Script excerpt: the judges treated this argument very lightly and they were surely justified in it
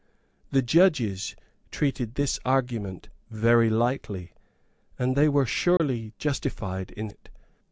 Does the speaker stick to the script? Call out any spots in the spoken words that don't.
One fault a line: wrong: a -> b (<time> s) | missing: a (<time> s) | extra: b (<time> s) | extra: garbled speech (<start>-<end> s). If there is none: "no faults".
no faults